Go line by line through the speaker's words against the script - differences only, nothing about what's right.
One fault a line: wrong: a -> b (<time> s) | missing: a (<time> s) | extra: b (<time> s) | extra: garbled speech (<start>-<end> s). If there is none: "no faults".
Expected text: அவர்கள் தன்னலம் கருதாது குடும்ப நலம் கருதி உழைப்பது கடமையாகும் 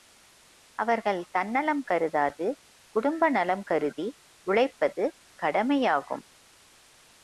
no faults